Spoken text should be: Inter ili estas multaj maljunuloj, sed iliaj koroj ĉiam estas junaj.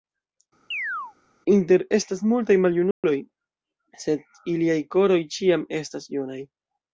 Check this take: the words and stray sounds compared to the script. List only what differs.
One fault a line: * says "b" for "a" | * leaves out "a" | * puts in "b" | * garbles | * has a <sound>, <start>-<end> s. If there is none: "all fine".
* has a chirp, 0.7-1.1 s
* leaves out "ili"
* has a dropout, 2.9-3.0 s